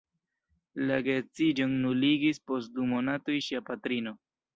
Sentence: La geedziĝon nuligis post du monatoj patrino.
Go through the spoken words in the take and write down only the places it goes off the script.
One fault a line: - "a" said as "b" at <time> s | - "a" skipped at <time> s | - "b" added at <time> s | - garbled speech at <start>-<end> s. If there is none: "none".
- "ŝia" added at 3.5 s